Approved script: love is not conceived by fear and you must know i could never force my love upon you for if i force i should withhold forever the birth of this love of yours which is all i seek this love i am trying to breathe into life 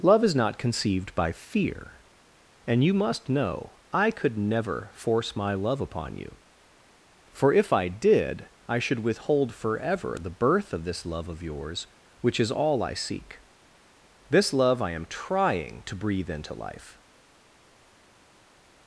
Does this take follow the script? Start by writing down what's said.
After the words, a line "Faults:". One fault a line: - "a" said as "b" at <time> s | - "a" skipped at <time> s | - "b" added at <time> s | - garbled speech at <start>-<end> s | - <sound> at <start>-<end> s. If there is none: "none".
love is not conceived by fear and you must know i could never force my love upon you for if i did i should withhold forever the birth of this love of yours which is all i seek this love i am trying to breathe into life
Faults:
- "force" said as "did" at 7.9 s